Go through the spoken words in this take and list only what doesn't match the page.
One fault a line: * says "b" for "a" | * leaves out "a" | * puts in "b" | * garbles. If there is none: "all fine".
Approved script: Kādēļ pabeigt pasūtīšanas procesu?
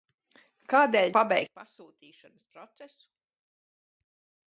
all fine